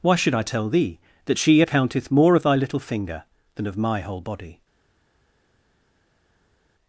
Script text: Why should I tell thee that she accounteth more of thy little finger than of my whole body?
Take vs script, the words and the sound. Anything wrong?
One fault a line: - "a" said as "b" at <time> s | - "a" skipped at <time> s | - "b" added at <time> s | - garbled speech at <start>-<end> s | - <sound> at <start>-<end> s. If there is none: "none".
none